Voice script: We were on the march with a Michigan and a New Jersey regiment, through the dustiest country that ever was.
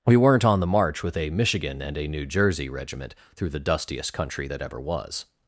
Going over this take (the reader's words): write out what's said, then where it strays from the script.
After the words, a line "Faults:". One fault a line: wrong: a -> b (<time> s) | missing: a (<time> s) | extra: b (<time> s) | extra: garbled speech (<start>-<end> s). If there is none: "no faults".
We weren't on the march with a Michigan and a New Jersey regiment, through the dustiest country that ever was.
Faults:
wrong: were -> weren't (0.2 s)